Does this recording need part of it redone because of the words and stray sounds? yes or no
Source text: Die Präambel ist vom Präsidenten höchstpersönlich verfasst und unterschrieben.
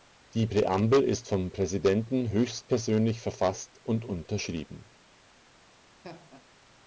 yes